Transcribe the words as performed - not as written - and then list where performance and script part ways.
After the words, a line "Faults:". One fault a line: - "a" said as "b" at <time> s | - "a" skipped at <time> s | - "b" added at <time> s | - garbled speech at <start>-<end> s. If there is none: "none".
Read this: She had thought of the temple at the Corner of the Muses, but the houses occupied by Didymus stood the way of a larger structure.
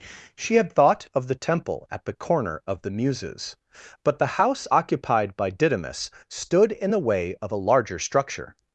She had thought of the temple at the Corner of the Muses, but the house occupied by Didymus stood in the way of a larger structure.
Faults:
- "houses" said as "house" at 4.4 s
- "in" added at 6.7 s